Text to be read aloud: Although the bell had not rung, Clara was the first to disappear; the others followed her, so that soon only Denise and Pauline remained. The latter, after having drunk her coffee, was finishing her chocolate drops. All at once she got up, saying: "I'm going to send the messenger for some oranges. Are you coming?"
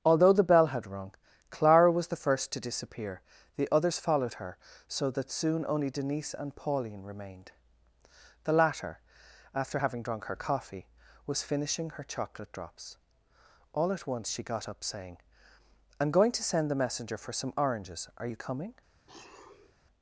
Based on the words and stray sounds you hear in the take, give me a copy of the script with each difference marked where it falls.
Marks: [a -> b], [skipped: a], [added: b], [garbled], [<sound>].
Although the bell had [skipped: not] rung, Clara was the first to disappear; the others followed her, so that soon only Denise and Pauline remained. The latter, after having drunk her coffee, was finishing her chocolate drops. All at once she got up, saying: "I'm going to send the messenger for some oranges. Are you coming?" [sniff]